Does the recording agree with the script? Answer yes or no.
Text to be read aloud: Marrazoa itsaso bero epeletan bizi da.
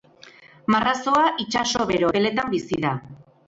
yes